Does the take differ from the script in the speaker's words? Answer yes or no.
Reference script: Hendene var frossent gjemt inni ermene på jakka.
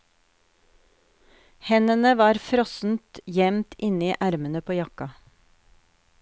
no